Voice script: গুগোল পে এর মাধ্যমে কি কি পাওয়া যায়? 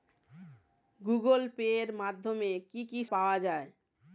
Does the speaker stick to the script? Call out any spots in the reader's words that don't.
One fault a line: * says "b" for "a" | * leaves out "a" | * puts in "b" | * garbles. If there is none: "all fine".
all fine